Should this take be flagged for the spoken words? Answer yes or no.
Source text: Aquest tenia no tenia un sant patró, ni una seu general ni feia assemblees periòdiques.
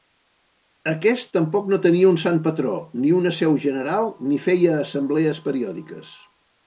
yes